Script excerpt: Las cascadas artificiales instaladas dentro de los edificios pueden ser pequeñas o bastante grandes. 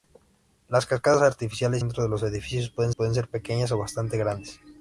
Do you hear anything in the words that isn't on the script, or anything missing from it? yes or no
yes